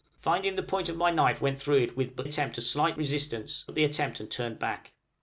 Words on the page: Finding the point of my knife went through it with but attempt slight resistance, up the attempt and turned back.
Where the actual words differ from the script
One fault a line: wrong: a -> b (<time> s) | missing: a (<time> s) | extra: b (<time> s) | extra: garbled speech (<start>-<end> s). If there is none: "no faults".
no faults